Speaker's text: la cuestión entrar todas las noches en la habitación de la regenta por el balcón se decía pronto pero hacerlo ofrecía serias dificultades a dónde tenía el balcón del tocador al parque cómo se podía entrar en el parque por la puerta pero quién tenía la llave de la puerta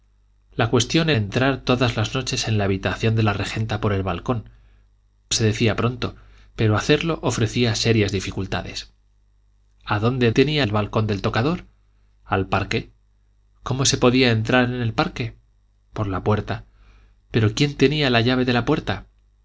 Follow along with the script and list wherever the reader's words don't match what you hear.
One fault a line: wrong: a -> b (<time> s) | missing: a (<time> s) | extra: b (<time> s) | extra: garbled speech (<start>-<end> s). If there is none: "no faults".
no faults